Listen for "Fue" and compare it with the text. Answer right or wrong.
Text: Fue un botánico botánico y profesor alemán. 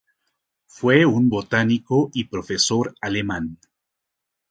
right